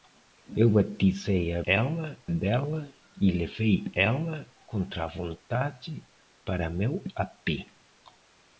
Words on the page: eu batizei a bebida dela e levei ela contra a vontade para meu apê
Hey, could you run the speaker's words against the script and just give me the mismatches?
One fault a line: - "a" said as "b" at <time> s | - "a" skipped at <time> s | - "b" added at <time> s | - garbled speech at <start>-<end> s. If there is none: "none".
- "bebida" said as "ela" at 1.6 s